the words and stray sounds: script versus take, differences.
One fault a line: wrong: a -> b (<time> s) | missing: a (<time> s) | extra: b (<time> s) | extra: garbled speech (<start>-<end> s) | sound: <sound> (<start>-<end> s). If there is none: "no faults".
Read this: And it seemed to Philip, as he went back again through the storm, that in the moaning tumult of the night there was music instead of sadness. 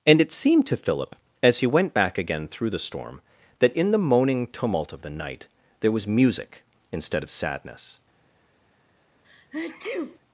sound: sneeze (9.2-10.2 s)